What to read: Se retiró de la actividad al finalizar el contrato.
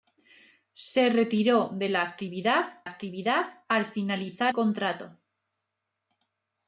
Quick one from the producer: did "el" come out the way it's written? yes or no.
no